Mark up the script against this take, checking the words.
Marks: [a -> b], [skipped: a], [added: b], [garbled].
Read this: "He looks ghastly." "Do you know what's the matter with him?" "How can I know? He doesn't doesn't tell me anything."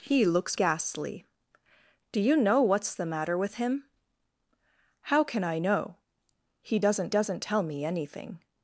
"He looks ghastly." "Do you know what's the matter with him?" "How can I know? He doesn't doesn't tell me anything."